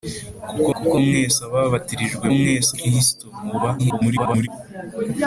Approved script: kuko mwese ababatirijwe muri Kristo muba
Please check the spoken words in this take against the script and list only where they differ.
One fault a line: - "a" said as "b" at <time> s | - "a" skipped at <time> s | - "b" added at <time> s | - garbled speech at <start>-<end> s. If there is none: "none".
- "kuko" added at 0.8 s
- "muri" said as "mwese" at 2.4 s
- garbled speech at 3.8-4.5 s